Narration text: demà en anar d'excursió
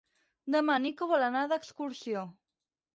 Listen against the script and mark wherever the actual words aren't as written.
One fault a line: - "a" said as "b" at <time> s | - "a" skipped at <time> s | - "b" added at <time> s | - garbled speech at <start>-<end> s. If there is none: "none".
- "nico vol" added at 0.9 s